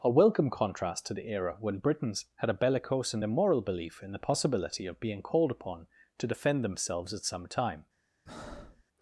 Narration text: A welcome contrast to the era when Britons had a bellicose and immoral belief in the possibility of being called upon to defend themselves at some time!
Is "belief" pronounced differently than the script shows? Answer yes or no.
no